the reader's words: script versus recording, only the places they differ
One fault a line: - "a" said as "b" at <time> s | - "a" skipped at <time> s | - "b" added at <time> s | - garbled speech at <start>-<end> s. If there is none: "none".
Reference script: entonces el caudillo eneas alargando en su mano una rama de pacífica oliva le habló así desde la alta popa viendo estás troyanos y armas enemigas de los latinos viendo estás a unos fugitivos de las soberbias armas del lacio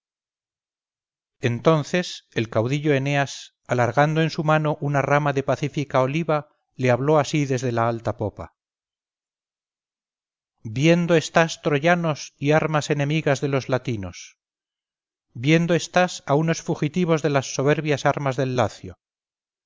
none